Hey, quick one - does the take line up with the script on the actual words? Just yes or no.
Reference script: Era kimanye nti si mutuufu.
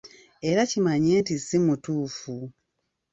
yes